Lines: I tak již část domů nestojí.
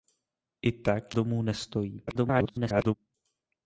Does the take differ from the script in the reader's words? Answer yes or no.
yes